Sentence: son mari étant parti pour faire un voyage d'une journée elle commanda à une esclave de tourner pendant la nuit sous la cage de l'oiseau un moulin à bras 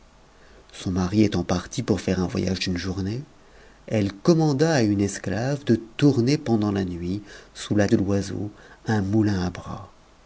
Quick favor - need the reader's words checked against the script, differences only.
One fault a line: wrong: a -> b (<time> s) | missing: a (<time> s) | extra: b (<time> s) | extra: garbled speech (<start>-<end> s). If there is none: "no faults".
missing: cage (7.9 s)